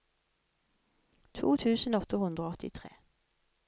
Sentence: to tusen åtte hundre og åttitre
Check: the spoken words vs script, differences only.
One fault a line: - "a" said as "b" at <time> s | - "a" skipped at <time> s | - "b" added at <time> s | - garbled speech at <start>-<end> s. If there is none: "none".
none